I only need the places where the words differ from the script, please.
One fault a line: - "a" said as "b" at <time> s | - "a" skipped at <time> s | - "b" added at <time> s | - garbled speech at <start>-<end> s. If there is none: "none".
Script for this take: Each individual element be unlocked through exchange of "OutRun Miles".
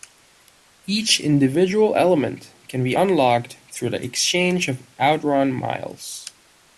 - "can" added at 2.7 s
- "the" added at 3.9 s